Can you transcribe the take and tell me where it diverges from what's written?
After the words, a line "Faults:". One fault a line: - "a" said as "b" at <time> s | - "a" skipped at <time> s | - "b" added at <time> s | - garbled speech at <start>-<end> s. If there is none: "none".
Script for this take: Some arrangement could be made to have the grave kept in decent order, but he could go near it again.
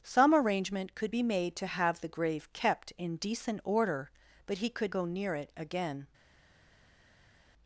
Some arrangement could be made to have the grave kept in decent order, but he could go near it again.
Faults:
none